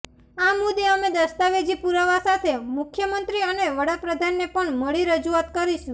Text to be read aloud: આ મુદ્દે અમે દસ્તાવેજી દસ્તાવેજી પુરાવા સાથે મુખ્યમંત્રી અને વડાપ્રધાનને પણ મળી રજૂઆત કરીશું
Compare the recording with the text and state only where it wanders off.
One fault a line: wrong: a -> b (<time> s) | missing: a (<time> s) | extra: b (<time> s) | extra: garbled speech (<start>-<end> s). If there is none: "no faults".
missing: દસ્તાવેજી (1.8 s)